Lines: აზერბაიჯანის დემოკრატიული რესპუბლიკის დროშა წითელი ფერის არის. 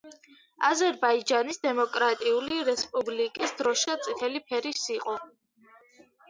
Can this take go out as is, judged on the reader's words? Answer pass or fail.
fail